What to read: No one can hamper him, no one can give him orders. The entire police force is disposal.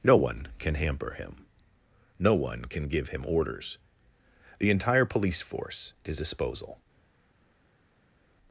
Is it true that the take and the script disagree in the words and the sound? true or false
false